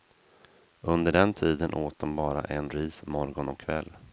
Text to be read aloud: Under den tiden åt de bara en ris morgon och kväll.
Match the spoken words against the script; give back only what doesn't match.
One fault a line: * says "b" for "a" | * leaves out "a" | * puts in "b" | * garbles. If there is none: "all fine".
all fine